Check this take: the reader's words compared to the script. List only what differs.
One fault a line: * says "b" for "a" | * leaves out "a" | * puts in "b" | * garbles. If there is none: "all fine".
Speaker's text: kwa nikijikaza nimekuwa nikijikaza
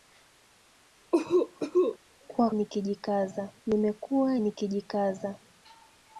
all fine